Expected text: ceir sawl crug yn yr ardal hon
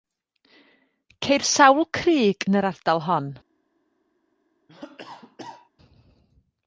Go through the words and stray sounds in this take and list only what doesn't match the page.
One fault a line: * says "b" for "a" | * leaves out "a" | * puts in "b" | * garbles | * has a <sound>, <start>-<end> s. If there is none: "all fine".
* has a cough, 4.7-5.7 s